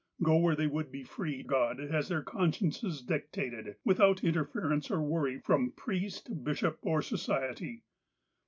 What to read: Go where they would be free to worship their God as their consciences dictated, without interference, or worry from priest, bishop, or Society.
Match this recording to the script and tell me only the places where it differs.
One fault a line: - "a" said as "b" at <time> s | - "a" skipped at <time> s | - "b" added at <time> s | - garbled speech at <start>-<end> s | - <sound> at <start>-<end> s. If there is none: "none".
- "to worship their" skipped at 1.4 s